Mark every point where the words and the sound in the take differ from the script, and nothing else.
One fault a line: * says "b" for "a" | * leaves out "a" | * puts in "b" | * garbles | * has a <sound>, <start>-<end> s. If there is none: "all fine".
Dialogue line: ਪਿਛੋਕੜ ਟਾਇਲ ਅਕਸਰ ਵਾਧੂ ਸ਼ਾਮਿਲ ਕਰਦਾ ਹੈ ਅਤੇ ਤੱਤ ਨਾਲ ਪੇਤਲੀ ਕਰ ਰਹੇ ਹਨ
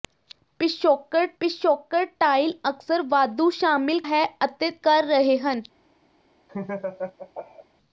* puts in "ਪਿਛੋਕੜ"
* leaves out "ਕਰਦਾ"
* leaves out "ਤੱਤ ਨਾਲ ਪੇਤਲੀ"
* has a laugh, 6.5-7.7 s